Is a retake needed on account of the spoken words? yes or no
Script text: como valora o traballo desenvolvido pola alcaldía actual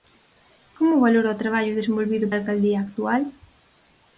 yes